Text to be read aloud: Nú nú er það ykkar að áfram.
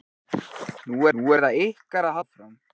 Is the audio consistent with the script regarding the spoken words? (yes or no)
yes